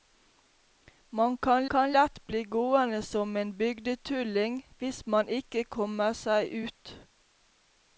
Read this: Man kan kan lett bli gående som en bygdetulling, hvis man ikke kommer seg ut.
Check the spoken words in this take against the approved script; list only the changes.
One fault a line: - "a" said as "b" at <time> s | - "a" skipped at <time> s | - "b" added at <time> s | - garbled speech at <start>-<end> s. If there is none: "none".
none